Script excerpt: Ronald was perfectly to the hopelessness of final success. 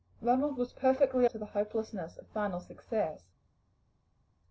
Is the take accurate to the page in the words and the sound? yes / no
yes